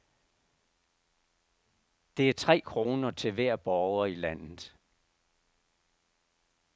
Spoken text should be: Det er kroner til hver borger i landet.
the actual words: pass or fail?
fail